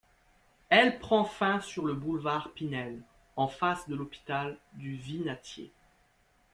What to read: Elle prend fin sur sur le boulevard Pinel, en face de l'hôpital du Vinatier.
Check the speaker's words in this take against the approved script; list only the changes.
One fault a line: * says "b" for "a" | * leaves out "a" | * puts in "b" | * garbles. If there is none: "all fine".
* leaves out "sur"